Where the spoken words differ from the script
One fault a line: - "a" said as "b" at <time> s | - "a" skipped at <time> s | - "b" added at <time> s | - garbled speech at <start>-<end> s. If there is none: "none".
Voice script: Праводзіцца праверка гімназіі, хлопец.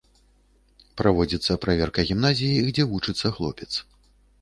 - "дзе вучыцца" added at 2.8 s